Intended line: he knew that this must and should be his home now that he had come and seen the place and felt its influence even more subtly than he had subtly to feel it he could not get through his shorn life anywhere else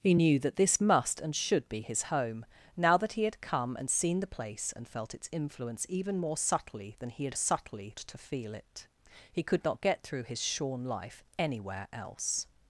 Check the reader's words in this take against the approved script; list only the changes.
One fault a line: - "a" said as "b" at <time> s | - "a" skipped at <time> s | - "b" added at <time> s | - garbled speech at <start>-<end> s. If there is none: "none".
none